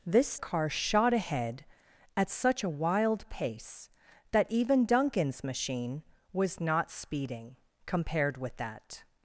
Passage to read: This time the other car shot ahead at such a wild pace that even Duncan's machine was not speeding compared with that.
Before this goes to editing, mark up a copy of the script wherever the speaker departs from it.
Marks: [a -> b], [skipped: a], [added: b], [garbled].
This [skipped: time the other] car shot ahead at such a wild pace that even Duncan's machine was not speeding compared with that.